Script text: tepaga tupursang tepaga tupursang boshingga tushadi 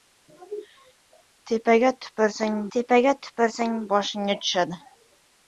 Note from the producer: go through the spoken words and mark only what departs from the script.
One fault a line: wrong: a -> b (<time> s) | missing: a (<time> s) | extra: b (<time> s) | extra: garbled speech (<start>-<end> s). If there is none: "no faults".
no faults